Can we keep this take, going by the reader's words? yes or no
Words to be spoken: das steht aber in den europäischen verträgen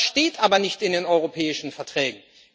no